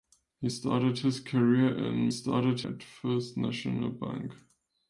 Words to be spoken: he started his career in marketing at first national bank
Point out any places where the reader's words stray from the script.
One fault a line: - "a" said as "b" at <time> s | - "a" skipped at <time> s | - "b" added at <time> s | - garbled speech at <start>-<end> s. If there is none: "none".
- "marketing" said as "started" at 2.1 s